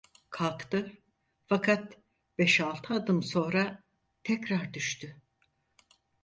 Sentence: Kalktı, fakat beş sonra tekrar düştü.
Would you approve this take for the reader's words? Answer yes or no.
no